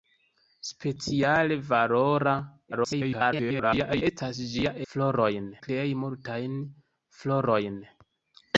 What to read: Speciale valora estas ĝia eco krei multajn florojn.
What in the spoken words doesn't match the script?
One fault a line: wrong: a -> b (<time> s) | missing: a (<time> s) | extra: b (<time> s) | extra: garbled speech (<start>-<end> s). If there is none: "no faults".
extra: garbled speech (2.7-4.0 s)
wrong: eco -> florojn (4.9 s)